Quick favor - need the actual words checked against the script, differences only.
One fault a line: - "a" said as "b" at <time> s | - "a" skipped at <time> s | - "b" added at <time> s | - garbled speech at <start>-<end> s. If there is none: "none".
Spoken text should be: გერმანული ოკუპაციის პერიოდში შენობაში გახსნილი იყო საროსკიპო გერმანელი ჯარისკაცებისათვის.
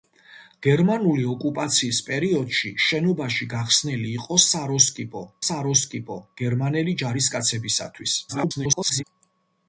- "საროსკიპო" added at 5.4 s
- garbled speech at 8.3-9.0 s